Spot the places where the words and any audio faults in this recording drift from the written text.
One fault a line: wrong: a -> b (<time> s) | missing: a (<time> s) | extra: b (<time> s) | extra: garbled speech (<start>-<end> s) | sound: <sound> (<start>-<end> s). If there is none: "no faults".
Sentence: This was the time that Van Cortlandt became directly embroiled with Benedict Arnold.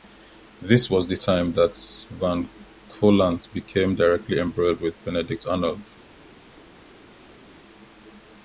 no faults